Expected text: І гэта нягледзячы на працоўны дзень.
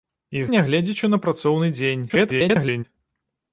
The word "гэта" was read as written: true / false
false